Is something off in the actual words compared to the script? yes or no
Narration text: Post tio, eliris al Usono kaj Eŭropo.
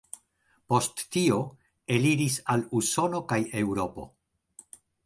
no